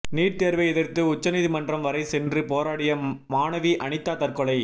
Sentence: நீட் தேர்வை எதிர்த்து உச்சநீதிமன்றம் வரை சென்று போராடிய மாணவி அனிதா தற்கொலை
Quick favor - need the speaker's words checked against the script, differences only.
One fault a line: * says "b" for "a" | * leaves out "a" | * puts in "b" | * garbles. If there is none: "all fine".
all fine